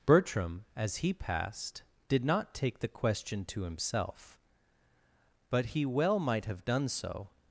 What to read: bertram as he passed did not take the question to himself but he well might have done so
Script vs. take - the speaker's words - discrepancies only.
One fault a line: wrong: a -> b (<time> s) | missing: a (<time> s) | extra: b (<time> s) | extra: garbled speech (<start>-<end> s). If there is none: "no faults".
no faults